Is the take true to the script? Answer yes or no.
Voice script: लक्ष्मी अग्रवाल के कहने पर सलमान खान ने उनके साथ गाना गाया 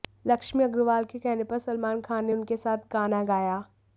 yes